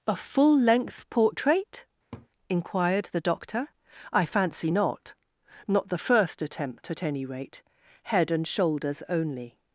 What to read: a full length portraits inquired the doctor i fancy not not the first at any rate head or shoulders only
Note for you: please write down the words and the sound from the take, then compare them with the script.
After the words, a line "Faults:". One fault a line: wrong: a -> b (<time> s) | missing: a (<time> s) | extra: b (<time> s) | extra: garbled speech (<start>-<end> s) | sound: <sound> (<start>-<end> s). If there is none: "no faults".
a full length portrait inquired the doctor i fancy not not the first attempt at any rate head and shoulders only
Faults:
wrong: portraits -> portrait (1.1 s)
sound: laugh (2.1-2.3 s)
extra: attempt (6.4 s)
wrong: or -> and (8.3 s)